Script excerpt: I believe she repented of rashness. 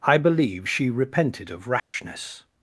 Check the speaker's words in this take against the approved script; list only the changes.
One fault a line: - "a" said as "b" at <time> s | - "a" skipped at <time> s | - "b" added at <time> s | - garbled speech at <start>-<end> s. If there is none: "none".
none